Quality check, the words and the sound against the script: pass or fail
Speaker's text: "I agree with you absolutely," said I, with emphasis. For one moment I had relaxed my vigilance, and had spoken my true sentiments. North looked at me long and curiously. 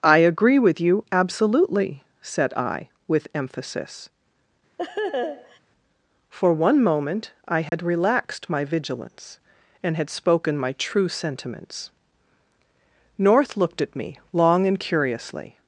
fail